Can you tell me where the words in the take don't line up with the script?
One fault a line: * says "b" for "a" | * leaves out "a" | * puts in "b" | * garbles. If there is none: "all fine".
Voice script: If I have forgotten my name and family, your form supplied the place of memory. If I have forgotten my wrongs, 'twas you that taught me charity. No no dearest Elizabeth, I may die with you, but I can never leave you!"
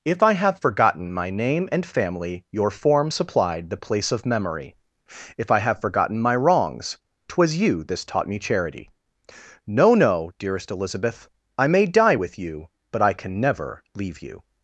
* says "this" for "that"